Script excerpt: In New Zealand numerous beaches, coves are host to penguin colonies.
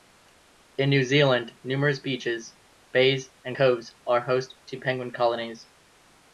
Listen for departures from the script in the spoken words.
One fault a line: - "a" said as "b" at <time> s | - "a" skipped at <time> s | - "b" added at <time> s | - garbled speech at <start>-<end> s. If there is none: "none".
- "bays and" added at 2.9 s